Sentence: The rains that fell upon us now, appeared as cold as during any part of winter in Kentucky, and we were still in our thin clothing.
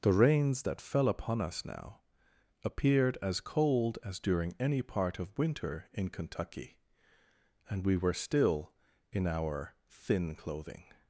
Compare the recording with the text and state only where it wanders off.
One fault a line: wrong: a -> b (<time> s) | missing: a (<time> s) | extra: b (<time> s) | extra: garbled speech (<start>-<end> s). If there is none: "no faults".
no faults